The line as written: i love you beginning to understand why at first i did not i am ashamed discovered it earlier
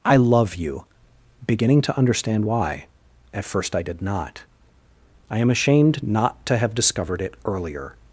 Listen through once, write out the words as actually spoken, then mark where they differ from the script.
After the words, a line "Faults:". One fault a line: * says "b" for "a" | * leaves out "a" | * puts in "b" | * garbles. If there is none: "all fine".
i love you beginning to understand why at first i did not i am ashamed not to have discovered it earlier
Faults:
* puts in "not to have"